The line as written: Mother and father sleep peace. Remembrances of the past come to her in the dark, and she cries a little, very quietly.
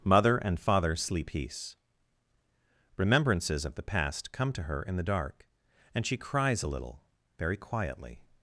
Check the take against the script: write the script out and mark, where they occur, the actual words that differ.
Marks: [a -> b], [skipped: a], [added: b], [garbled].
Mother and father sleep peace. Remembrances of the past come to her in the dark, and she cries a little, very quietly.